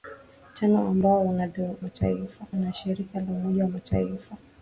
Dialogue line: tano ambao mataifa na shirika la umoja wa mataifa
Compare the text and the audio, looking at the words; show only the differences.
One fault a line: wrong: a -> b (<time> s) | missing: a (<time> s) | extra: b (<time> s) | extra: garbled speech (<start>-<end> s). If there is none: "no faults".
no faults